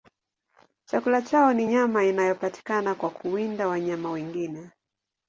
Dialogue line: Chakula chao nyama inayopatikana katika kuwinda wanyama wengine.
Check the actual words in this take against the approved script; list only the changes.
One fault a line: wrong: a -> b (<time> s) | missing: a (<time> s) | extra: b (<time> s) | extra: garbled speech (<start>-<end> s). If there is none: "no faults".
extra: ni (1.5 s)
wrong: katika -> kwa (2.9 s)